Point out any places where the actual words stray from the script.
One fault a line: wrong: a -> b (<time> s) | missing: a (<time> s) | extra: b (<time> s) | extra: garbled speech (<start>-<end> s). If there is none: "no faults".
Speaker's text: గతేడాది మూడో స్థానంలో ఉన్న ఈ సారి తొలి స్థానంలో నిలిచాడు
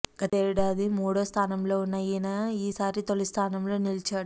extra: ఈయన (2.0 s)